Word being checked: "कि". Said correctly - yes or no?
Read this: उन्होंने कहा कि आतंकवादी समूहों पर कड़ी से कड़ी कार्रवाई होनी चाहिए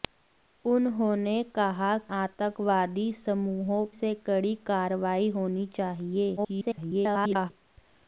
no